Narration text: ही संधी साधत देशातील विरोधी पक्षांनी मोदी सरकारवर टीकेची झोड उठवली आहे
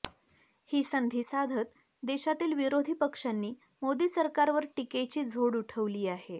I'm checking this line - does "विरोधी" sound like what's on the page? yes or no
yes